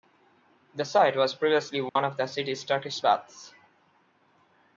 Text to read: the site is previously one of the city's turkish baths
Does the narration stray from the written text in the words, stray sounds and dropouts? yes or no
yes